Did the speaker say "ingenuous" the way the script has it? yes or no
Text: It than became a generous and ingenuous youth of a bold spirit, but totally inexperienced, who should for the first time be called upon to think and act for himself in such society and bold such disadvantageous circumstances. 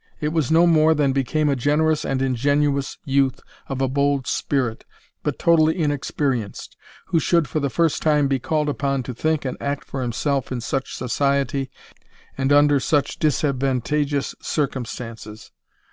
yes